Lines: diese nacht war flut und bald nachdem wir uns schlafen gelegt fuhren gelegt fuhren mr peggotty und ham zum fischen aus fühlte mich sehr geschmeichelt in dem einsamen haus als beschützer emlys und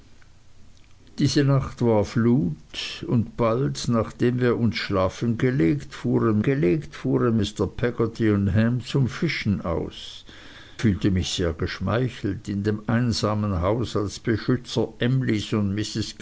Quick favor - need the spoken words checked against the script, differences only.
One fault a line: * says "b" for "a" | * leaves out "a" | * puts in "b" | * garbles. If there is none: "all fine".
all fine